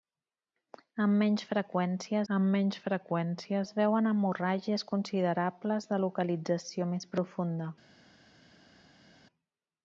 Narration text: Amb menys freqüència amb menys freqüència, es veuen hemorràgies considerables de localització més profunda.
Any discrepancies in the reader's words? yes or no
no